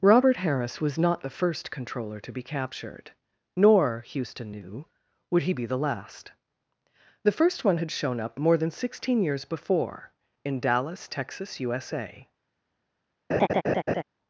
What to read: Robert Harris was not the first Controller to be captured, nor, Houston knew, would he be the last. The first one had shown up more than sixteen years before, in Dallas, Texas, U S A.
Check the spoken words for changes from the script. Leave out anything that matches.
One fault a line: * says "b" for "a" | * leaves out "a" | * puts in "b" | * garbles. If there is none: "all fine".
all fine